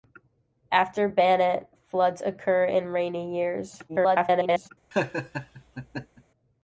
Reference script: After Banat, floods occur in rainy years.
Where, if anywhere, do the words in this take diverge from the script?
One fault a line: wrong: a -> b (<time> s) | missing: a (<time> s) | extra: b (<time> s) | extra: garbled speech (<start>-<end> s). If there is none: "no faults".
extra: garbled speech (3.9-4.7 s)